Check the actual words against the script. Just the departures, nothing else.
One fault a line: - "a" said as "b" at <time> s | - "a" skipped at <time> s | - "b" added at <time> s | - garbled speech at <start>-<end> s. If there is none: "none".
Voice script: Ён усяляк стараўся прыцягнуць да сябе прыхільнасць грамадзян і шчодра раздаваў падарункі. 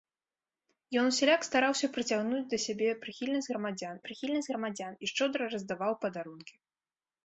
- "прыхільнасць грамадзян" added at 4.1 s